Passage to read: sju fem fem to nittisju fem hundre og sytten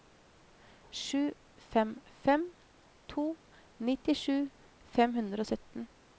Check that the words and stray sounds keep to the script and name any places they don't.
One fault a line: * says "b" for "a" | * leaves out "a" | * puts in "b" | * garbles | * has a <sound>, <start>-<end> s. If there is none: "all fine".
all fine